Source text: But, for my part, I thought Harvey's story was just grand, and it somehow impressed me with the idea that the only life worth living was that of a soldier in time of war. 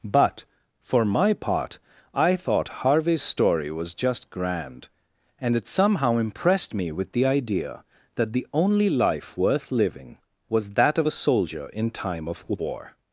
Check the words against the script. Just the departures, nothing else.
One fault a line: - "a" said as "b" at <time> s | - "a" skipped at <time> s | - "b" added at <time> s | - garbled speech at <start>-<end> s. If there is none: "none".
none